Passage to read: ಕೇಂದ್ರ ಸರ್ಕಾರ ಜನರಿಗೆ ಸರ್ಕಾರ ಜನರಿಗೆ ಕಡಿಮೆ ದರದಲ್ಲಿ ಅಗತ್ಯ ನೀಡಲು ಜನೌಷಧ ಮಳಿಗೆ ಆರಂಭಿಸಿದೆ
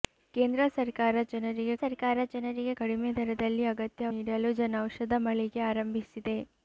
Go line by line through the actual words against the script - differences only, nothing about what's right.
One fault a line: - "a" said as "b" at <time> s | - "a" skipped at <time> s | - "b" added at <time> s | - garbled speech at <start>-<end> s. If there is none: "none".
none